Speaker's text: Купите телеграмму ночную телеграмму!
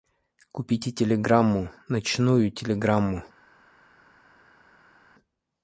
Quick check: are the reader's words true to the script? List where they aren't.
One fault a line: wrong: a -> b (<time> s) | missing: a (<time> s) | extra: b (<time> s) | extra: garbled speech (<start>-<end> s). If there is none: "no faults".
no faults